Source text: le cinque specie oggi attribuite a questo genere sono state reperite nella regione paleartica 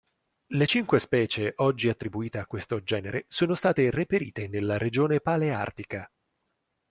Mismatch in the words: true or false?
false